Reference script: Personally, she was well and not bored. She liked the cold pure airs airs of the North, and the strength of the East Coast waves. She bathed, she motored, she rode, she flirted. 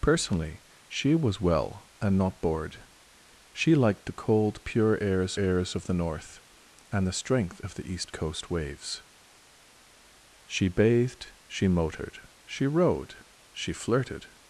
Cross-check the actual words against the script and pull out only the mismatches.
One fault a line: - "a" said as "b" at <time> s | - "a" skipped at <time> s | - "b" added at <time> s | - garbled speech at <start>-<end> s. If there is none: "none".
none